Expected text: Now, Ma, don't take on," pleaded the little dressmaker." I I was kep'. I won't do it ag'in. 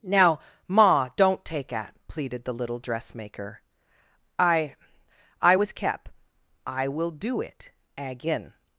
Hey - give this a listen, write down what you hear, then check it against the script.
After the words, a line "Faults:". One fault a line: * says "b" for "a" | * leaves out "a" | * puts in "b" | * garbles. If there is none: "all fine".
Now, Ma, don't take at," pleaded the little dressmaker." I I was kep'. I will do it ag'in.
Faults:
* says "at" for "on"
* says "will" for "won't"